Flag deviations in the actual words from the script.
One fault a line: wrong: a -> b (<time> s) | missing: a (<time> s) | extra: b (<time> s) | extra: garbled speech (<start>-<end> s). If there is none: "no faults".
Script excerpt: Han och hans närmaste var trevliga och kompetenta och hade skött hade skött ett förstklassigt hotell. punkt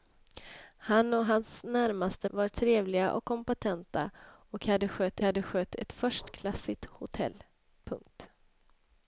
no faults